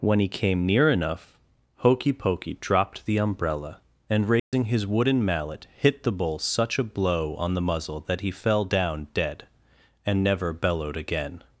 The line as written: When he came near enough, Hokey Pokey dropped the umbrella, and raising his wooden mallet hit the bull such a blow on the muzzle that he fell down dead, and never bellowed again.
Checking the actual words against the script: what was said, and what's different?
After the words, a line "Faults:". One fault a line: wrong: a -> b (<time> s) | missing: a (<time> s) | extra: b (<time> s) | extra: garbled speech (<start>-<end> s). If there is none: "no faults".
When he came near enough, Hokey Pokey dropped the umbrella, and raising his wooden mallet hit the bull such a blow on the muzzle that he fell down dead, and never bellowed again.
Faults:
no faults